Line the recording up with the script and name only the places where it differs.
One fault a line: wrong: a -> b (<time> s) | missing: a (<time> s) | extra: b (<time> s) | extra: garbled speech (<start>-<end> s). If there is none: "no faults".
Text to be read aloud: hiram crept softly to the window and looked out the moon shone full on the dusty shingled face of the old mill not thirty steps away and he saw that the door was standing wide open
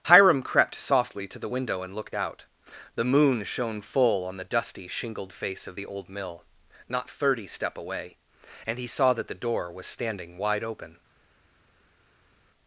wrong: steps -> step (7.5 s)